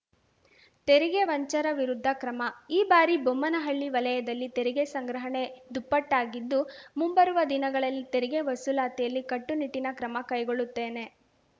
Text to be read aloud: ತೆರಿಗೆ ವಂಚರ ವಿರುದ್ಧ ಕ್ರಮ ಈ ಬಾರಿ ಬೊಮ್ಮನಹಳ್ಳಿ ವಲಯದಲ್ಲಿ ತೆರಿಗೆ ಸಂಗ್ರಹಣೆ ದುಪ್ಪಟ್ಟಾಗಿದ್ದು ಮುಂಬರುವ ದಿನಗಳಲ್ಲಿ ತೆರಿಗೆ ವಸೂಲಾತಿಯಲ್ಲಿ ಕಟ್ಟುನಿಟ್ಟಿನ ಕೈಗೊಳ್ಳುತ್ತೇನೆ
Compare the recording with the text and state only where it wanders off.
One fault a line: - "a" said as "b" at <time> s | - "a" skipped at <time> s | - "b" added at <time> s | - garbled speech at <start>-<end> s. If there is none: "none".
- "ಕ್ರಮ" added at 10.0 s